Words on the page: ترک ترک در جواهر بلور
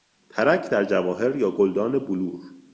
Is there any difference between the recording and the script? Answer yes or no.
yes